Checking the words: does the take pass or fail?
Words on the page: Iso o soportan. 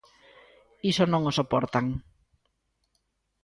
fail